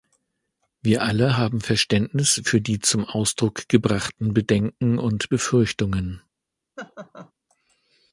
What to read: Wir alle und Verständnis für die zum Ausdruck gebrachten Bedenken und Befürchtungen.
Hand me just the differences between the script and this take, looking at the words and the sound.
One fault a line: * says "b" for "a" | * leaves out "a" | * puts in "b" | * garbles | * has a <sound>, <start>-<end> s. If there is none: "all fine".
* says "haben" for "und"
* has a laugh, 6.8-7.3 s